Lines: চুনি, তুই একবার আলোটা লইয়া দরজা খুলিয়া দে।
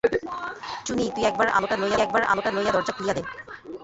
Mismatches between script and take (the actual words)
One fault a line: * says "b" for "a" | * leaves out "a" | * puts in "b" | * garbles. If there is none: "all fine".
* puts in "একবার আলোটা লইয়া"